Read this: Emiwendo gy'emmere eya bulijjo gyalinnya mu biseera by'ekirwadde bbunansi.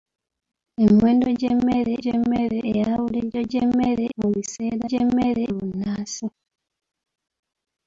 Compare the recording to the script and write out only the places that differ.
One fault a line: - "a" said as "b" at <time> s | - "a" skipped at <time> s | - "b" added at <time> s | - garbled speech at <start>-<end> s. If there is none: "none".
- "gy'emmere" added at 2.0 s
- "gyalinnya" said as "gy'emmere" at 3.5 s
- "by'ekirwadde" said as "gy'emmere" at 4.9 s